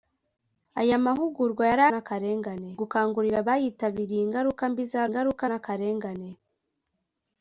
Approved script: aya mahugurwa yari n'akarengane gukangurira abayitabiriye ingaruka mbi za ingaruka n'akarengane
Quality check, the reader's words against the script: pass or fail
pass